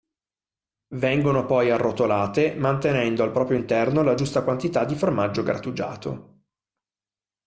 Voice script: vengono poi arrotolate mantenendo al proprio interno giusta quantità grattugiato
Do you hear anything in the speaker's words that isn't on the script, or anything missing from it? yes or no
yes